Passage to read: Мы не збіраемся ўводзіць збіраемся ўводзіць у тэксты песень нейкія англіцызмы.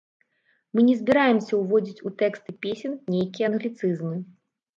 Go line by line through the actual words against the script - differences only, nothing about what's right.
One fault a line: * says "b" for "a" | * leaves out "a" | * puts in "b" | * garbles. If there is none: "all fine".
* leaves out "збіраемся ўводзіць"